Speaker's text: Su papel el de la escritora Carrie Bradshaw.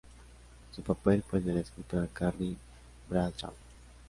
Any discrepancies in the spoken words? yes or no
yes